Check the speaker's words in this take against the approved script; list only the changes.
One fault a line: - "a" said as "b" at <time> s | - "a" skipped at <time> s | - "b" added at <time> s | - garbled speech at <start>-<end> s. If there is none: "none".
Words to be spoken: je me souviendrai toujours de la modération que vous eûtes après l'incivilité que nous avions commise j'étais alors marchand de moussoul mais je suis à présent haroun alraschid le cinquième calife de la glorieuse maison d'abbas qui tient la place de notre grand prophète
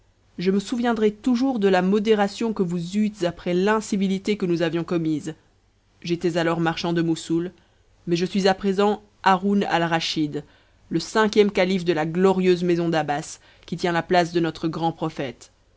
none